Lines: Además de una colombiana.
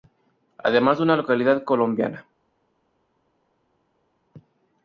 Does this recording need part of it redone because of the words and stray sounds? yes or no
yes